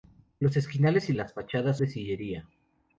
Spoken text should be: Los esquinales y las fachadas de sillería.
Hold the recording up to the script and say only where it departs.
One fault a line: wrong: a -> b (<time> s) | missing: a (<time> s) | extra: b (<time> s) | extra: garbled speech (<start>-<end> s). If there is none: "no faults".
no faults